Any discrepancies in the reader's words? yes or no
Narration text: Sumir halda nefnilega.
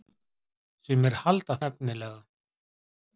no